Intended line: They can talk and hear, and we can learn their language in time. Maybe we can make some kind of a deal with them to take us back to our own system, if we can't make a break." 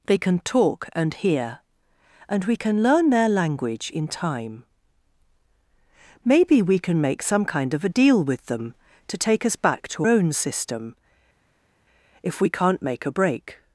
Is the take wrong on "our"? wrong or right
wrong